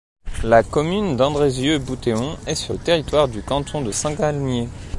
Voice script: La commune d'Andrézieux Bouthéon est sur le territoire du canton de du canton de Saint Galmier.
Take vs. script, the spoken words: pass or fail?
fail